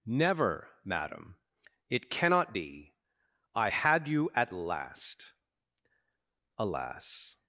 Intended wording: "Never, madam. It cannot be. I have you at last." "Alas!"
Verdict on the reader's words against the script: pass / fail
fail